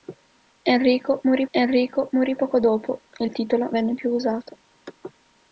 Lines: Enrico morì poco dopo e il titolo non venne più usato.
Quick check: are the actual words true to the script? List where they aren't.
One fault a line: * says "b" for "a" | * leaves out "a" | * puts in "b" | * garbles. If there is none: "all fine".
* puts in "enrico morì"
* leaves out "non"